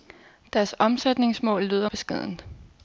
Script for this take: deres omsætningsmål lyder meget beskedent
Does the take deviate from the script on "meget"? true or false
true